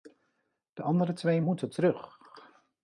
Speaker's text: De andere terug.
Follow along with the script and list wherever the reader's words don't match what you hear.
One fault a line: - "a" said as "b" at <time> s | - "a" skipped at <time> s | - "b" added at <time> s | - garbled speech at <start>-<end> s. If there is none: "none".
- "twee moeten" added at 1.1 s